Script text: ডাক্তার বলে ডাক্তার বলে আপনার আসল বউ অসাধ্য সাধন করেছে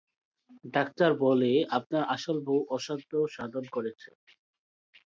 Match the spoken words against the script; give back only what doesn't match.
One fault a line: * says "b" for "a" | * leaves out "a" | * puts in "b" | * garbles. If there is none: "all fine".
* leaves out "ডাক্তার বলে"